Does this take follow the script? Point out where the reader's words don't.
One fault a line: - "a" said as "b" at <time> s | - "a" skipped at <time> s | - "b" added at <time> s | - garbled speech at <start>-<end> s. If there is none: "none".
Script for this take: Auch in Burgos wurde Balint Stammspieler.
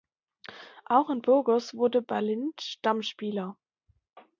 none